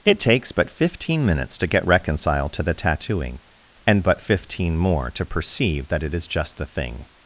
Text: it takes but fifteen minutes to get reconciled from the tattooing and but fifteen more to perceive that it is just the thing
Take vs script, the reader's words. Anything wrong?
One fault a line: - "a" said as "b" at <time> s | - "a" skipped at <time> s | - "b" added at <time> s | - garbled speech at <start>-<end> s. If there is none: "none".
- "from" said as "to" at 2.5 s